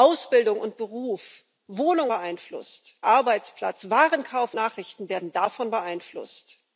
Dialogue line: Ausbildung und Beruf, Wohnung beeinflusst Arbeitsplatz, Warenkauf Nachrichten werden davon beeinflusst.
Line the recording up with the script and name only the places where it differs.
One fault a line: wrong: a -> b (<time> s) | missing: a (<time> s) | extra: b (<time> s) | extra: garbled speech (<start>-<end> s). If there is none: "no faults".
no faults